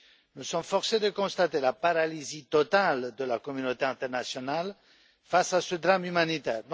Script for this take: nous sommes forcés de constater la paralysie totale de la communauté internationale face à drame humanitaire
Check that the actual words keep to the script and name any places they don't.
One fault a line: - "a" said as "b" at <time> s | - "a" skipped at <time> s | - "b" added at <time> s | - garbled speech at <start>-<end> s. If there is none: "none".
- "ce" added at 5.6 s